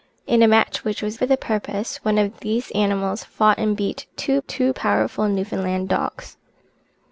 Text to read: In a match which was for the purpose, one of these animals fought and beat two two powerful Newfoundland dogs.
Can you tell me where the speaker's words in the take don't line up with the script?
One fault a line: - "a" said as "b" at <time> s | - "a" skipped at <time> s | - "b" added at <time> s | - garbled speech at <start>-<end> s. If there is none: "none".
none